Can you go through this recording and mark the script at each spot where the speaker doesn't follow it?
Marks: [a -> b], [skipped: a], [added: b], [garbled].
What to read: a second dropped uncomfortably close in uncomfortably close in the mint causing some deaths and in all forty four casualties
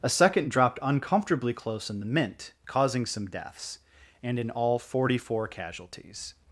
a second dropped uncomfortably close in [skipped: uncomfortably close in] the mint causing some deaths and in all forty four casualties